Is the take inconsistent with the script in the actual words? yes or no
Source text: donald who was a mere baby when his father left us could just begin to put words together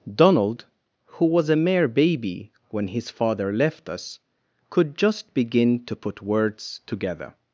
no